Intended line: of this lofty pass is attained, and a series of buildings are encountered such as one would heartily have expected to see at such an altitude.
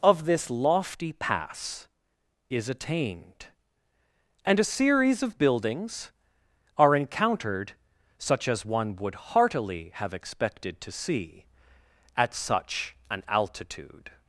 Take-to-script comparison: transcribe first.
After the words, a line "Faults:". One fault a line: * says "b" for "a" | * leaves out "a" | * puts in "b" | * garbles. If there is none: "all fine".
of this lofty pass is attained, and a series of buildings are encountered such as one would heartily have expected to see at such an altitude.
Faults:
all fine